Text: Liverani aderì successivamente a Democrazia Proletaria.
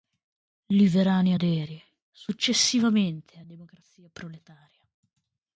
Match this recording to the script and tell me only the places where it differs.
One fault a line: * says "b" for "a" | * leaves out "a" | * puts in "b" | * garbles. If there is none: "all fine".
all fine